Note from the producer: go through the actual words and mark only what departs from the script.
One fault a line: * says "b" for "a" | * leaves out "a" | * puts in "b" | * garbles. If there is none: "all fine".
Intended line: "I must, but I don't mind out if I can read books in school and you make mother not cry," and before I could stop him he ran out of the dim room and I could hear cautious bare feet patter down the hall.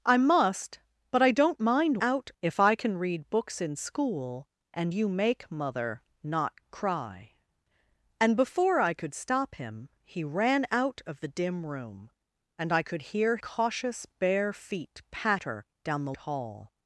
all fine